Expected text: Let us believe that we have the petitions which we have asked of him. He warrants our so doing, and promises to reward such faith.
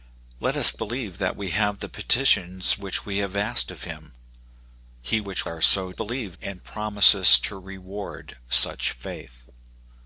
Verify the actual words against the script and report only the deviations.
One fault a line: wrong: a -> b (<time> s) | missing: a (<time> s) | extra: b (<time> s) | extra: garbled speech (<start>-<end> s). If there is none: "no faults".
wrong: warrants -> which (5.2 s)
wrong: doing -> believe (5.9 s)